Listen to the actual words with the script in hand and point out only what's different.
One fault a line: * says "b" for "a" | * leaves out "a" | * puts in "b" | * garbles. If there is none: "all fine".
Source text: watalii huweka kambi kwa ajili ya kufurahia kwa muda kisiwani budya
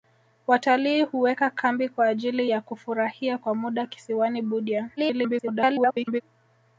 * garbles